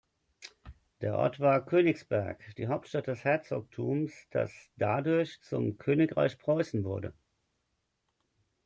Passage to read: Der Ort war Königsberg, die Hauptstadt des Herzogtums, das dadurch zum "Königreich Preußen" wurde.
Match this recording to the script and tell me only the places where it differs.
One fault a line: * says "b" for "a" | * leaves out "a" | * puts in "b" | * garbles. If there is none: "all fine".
all fine